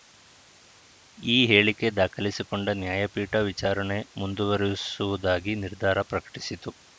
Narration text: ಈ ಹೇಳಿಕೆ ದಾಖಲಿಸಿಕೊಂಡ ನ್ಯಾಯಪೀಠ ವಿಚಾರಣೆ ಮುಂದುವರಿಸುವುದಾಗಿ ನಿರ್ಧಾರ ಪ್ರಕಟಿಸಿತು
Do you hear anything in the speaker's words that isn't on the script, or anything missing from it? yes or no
no